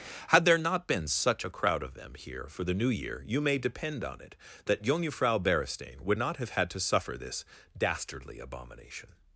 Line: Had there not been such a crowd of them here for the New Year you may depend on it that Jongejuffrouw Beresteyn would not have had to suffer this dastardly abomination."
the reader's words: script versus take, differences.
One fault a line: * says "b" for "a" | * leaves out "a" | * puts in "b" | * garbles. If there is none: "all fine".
all fine